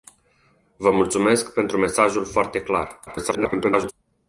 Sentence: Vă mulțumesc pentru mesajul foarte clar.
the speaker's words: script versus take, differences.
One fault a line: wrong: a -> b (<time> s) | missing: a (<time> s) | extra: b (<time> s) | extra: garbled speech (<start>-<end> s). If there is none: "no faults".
extra: garbled speech (3.1-3.9 s)